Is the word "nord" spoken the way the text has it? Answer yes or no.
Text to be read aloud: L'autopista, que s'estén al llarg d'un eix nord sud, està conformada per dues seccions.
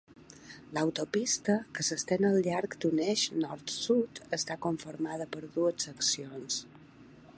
yes